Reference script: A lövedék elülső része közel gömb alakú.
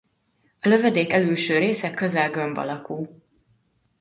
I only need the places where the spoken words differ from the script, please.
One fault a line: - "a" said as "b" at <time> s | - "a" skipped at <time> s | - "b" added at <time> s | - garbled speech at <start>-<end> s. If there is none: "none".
none